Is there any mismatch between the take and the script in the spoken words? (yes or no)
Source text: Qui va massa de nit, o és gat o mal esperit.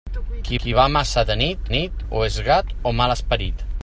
yes